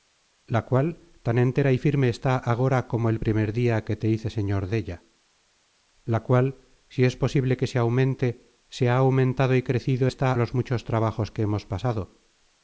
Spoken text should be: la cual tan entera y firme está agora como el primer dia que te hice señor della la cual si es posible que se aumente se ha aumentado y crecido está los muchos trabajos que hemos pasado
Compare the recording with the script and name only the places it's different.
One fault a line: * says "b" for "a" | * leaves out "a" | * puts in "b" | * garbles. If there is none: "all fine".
all fine